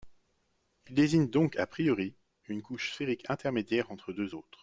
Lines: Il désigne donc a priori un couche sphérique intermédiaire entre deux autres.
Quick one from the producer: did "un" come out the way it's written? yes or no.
no